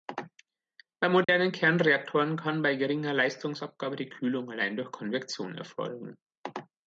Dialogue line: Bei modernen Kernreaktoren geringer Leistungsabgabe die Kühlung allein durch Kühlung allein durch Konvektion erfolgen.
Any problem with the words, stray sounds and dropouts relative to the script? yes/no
yes